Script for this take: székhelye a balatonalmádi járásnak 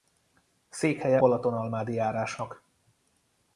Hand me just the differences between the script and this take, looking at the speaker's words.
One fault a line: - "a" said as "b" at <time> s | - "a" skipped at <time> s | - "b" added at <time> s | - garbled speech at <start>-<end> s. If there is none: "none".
- "a" skipped at 1.2 s